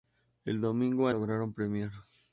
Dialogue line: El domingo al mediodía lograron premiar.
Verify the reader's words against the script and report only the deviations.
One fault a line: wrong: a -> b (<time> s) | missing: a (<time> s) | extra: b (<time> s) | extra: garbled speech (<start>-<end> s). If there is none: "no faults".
missing: al mediodía (1.1 s)